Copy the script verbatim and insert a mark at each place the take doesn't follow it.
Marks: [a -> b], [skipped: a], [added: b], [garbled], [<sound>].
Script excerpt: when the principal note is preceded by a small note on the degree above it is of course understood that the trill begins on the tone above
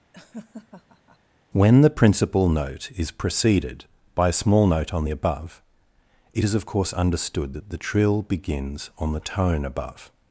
[laugh] when the principal note is preceded by a small note on the [skipped: degree] above it is of course understood that the trill begins on the tone above